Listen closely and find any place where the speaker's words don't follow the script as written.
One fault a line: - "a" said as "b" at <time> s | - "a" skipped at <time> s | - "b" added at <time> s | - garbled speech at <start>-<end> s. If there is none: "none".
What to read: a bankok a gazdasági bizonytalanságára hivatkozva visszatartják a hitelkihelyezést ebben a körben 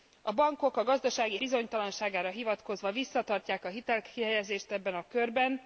none